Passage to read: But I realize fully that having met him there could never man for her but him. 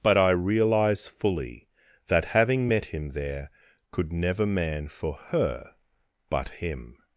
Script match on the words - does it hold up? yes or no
yes